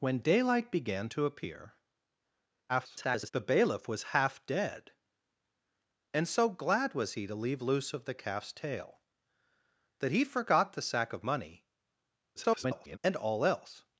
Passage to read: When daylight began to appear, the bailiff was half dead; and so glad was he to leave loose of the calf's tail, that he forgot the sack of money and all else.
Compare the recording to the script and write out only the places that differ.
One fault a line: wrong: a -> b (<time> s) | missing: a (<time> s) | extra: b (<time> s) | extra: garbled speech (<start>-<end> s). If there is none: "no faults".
extra: garbled speech (2.7-3.3 s)
extra: garbled speech (12.4-13.0 s)